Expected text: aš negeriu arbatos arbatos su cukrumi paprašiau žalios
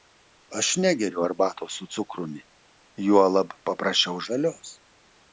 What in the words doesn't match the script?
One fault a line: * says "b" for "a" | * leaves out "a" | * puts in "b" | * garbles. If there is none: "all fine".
* leaves out "arbatos"
* puts in "juolab"